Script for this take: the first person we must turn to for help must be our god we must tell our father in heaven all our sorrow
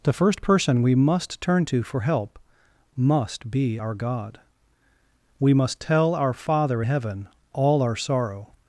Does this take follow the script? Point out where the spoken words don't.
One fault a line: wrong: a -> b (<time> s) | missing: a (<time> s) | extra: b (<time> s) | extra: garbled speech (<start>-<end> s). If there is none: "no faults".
missing: in (6.8 s)